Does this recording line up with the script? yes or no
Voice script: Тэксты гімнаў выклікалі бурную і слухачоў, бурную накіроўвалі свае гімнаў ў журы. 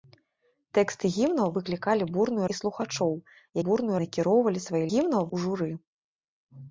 yes